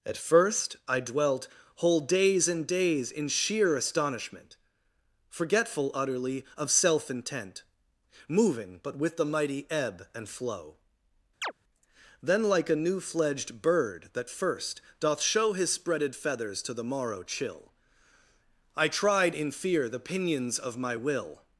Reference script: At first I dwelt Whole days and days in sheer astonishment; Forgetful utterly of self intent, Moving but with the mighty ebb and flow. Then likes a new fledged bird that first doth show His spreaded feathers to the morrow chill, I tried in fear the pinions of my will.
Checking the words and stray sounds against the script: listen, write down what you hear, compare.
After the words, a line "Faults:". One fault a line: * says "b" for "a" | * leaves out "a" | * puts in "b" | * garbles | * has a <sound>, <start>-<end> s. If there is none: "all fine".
At first I dwelt Whole days and days in sheer astonishment; Forgetful utterly of self intent, Moving but with the mighty ebb and flow. Then like a new fledged bird that first doth show His spreaded feathers to the morrow chill, I tried in fear the pinions of my will.
Faults:
* has a chirp, 11.4-11.5 s
* says "like" for "likes"